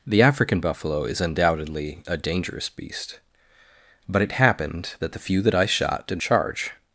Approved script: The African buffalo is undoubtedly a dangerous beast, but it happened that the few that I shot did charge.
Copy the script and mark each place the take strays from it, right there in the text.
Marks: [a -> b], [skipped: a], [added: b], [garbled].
The African buffalo is undoubtedly a dangerous beast, but it happened that the few that I shot did charge.